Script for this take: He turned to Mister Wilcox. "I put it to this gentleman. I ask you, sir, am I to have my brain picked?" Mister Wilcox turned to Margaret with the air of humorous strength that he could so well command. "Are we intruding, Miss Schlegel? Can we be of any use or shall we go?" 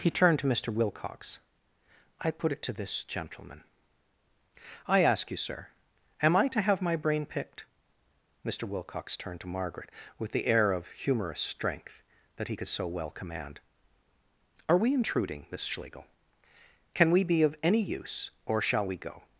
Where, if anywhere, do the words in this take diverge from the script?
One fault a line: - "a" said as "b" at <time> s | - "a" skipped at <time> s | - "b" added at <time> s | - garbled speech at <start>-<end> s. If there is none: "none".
none